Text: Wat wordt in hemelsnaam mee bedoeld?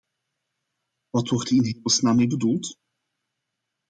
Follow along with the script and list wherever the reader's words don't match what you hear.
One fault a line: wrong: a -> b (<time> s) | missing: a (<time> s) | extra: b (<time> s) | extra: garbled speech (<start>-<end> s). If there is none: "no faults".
no faults